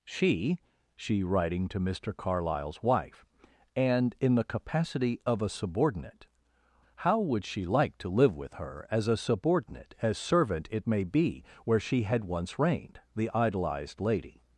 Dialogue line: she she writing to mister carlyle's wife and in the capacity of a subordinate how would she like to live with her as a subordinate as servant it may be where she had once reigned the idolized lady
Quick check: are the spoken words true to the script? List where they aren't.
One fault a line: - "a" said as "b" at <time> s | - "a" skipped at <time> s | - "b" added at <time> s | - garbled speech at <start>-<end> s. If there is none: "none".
none